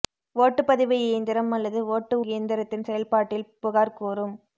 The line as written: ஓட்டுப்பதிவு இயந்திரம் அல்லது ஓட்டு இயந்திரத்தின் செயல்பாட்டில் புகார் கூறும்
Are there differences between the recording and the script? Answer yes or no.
no